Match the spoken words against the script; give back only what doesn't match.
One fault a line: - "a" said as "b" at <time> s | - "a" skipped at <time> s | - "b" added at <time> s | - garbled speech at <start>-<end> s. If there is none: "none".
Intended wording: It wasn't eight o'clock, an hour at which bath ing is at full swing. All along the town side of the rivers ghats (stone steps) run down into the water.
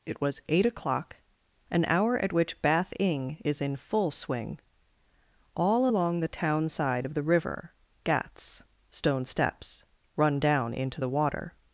- "wasn't" said as "was" at 0.2 s
- "at" said as "in" at 3.6 s
- "rivers" said as "river" at 7.2 s